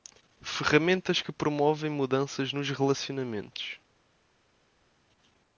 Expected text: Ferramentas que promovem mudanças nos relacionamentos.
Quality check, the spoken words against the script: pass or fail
pass